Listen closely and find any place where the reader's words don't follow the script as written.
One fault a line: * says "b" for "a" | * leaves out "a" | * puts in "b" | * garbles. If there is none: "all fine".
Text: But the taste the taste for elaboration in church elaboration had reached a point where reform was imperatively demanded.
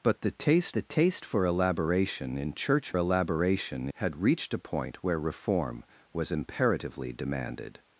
all fine